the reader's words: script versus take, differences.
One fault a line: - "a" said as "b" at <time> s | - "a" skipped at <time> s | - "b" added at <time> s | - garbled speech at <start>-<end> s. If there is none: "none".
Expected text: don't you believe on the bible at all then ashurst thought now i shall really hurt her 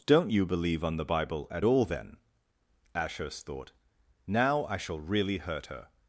none